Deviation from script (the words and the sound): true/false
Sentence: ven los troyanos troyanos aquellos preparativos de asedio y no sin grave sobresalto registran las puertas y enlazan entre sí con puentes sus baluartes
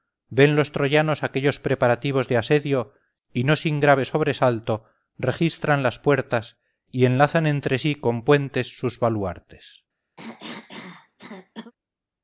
true